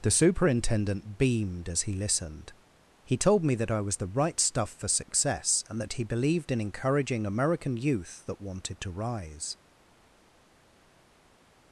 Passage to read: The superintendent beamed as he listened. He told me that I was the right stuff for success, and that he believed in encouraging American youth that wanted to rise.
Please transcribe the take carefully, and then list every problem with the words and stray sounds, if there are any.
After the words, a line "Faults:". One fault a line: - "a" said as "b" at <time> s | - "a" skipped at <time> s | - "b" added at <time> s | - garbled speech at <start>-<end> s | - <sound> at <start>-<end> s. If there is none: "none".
The superintendent beamed as he listened. He told me that I was the right stuff for success, and that he believed in encouraging American youth that wanted to rise.
Faults:
none